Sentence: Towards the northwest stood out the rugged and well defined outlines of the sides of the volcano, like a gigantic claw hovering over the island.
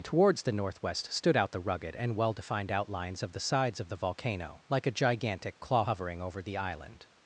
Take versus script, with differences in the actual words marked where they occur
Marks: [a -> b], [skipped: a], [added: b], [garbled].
Towards the northwest stood out the rugged and well defined outlines of the sides of the volcano, like a gigantic claw hovering over the island.